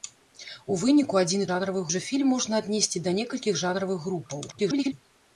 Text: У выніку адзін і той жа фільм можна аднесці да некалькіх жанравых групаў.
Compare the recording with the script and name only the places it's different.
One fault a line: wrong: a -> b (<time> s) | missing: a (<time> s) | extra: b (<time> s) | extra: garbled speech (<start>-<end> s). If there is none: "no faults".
wrong: той -> жанравых (1.5 s)
extra: garbled speech (4.5-4.9 s)